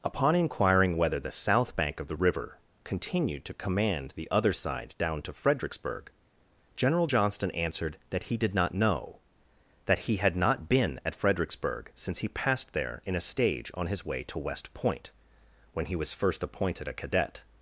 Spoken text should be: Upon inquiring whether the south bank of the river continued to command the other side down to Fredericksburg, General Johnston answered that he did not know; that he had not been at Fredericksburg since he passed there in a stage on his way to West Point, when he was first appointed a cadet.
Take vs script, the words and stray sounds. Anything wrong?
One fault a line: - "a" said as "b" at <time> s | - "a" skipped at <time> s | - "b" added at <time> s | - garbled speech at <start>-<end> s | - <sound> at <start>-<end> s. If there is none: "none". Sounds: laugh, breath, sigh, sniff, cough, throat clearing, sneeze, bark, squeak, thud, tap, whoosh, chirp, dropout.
none